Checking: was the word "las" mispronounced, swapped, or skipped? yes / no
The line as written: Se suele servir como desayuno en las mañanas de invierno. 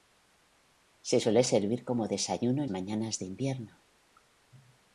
yes